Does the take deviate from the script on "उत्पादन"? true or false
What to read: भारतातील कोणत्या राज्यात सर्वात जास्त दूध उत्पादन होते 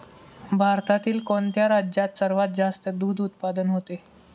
false